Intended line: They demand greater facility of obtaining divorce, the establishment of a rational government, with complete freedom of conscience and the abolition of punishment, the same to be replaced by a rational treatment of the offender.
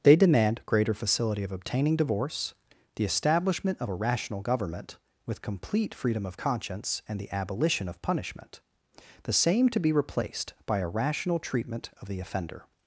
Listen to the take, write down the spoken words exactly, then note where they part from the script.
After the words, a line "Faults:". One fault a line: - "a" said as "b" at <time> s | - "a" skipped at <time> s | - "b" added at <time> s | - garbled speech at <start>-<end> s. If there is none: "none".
They demand greater facility of obtaining divorce, the establishment of a rational government, with complete freedom of conscience and the abolition of punishment, the same to be replaced by a rational treatment of the offender.
Faults:
none